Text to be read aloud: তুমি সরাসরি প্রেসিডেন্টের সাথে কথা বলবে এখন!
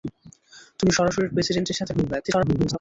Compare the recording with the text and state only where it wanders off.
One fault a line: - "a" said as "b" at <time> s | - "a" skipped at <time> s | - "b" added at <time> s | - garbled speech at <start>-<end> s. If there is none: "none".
- "কথা" skipped at 1.9 s
- garbled speech at 2.2-2.8 s